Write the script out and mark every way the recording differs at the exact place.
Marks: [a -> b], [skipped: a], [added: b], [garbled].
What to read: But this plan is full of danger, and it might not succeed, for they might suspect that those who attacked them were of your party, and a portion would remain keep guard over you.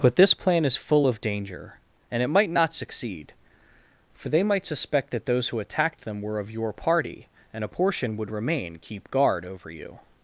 But this plan is full of danger, and it might not succeed, for they might suspect that those who attacked them were of your party, and a portion would remain keep guard over you.